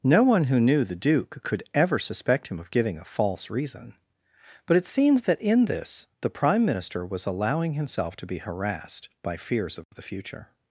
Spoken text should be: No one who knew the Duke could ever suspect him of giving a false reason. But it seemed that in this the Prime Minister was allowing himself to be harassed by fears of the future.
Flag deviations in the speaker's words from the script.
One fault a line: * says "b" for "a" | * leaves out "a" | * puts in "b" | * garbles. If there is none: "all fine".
all fine